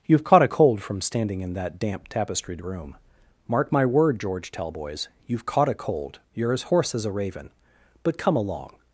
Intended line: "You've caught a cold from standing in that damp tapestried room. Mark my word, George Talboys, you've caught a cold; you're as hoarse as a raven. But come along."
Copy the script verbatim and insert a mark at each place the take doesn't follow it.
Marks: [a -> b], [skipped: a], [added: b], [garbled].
"You've caught a cold from standing in that damp tapestried room. Mark my word, George Talboys, you've caught a cold; you're as hoarse as a raven. But come along."